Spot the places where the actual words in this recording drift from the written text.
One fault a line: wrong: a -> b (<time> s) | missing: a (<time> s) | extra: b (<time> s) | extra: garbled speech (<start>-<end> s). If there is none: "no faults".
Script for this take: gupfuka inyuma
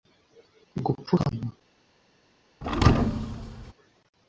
no faults